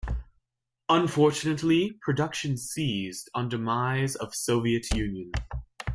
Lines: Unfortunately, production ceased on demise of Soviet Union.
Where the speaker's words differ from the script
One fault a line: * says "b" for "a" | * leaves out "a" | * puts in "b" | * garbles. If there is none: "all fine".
all fine